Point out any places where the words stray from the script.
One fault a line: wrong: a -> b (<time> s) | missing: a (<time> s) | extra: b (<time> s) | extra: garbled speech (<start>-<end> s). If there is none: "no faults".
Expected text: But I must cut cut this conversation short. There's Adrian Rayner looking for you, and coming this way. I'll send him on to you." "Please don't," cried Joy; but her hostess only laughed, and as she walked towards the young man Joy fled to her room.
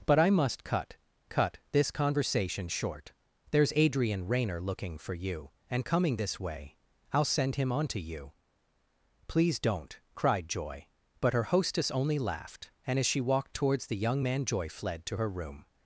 no faults